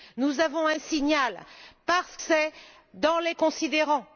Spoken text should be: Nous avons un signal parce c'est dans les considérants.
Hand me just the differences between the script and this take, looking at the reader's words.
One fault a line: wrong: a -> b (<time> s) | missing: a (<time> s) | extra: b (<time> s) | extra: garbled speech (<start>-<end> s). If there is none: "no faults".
no faults